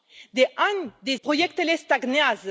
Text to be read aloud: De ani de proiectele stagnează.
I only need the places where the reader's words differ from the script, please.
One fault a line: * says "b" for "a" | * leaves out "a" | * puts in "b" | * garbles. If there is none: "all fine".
all fine